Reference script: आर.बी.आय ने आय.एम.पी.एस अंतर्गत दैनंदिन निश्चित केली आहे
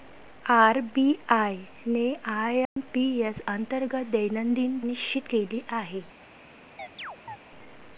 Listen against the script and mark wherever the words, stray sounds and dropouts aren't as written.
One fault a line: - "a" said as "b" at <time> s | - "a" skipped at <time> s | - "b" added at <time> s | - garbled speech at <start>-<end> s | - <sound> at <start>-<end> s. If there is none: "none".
- dropout at 2.7-2.8 s
- chirp at 6.8-7.4 s